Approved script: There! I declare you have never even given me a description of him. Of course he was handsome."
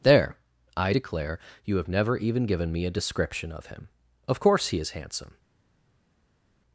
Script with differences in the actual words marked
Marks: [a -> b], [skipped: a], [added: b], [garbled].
There! I declare you have never even given me a description of him. Of course he [was -> is] handsome."